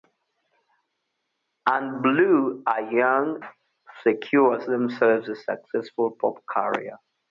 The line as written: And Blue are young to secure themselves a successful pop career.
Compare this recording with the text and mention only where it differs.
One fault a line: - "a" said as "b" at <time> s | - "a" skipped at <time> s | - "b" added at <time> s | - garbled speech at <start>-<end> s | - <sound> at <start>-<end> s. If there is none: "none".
none